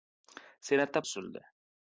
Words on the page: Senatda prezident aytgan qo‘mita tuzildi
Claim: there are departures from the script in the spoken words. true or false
true